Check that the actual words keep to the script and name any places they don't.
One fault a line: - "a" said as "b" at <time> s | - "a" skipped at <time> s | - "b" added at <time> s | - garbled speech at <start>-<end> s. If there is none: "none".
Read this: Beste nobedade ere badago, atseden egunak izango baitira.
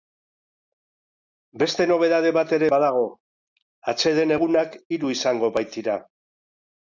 - "bat" added at 2.4 s
- "hiru" added at 5.0 s